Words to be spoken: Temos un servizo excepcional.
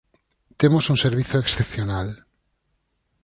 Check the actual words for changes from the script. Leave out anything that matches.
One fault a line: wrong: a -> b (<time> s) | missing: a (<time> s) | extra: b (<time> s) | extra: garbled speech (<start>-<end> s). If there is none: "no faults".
no faults